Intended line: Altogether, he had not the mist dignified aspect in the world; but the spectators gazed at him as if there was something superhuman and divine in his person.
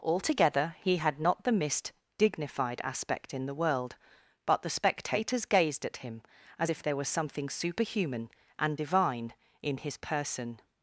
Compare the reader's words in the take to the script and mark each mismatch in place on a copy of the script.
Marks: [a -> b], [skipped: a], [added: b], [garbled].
Altogether, he had not the mist dignified aspect in the world; but the spectators gazed at him as if there was something superhuman and divine in his person.